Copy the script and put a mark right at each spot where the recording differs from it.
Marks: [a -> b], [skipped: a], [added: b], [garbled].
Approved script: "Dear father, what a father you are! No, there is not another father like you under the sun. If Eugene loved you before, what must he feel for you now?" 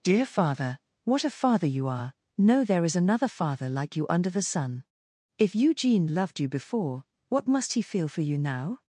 "Dear father, what a father you are! No, there is [skipped: not] another father like you under the sun. If Eugene loved you before, what must he feel for you now?"